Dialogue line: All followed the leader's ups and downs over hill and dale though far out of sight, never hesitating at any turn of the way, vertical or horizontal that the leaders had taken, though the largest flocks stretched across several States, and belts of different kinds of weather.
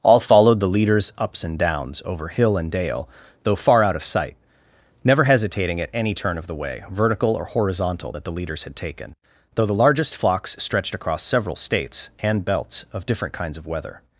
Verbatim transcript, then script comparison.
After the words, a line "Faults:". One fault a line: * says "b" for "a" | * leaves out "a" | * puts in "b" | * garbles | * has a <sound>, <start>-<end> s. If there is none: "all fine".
All followed the leader's ups and downs over hill and dale though far out of sight, never hesitating at any turn of the way, vertical or horizontal that the leaders had taken, though the largest flocks stretched across several States, and belts of different kinds of weather.
Faults:
all fine